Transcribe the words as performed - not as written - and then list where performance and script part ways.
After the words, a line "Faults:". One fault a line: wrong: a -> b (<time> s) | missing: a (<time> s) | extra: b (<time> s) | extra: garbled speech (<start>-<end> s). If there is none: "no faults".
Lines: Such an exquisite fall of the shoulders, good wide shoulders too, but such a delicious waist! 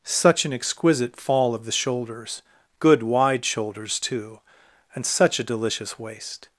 Such an exquisite fall of the shoulders, good wide shoulders too, and such a delicious waist!
Faults:
wrong: but -> and (5.0 s)